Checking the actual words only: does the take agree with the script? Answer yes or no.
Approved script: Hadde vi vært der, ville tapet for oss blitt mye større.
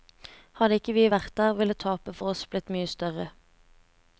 no